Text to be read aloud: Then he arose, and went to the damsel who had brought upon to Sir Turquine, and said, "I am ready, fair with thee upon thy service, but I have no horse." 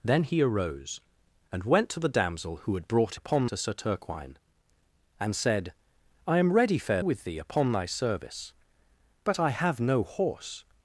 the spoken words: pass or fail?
pass